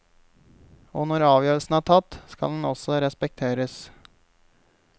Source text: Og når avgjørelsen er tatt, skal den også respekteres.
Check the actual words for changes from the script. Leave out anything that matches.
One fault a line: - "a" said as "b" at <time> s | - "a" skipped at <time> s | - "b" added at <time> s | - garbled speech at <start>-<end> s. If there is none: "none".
none